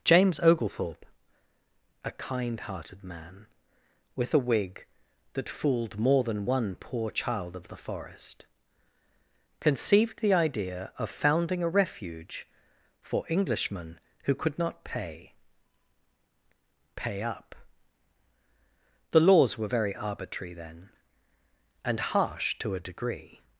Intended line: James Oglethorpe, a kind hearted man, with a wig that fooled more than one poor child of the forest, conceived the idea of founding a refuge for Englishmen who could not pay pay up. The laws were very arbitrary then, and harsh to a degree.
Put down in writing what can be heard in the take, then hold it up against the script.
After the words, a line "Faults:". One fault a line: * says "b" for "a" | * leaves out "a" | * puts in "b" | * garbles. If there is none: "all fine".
James Oglethorpe, a kind hearted man, with a wig that fooled more than one poor child of the forest, conceived the idea of founding a refuge for Englishmen who could not pay pay up. The laws were very arbitrary then, and harsh to a degree.
Faults:
all fine